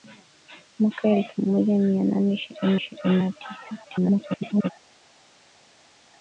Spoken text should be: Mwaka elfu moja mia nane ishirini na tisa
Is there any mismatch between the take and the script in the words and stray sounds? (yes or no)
yes